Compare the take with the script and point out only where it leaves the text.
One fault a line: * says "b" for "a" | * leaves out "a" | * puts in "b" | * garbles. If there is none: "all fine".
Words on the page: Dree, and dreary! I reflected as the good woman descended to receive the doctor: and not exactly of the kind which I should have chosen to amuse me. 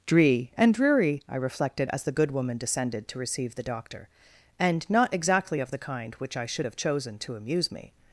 all fine